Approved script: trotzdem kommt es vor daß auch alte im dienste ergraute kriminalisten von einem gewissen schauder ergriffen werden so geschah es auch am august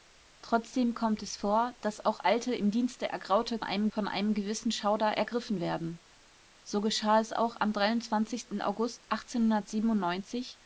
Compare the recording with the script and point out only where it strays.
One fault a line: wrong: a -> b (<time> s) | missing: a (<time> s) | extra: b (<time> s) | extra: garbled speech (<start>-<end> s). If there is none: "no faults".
wrong: kriminalisten -> einem (3.6 s)